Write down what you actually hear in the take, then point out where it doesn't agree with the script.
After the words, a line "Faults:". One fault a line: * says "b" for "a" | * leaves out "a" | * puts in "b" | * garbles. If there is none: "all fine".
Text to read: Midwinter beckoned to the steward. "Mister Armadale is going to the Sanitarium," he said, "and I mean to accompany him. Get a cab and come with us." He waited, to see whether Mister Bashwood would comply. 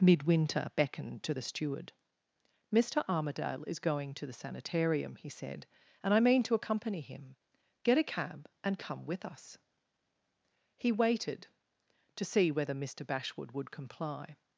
Midwinter beckoned to the steward. "Mister Armadale is going to the Sanitarium," he said, "and I mean to accompany him. Get a cab and come with us." He waited, to see whether Mister Bashwood would comply.
Faults:
all fine